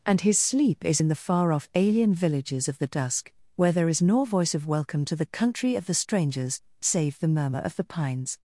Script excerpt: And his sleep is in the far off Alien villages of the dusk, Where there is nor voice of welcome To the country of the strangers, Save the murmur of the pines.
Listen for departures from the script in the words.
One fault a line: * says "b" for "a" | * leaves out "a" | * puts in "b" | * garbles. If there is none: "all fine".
all fine